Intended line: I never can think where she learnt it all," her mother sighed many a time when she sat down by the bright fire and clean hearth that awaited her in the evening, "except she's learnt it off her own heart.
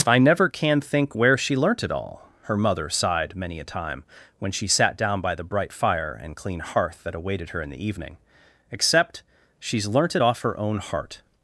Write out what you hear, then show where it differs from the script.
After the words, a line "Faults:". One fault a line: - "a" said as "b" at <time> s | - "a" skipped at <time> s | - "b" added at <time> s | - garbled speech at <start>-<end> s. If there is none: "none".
I never can think where she learnt it all," her mother sighed many a time when she sat down by the bright fire and clean hearth that awaited her in the evening, "except she's learnt it off her own heart.
Faults:
none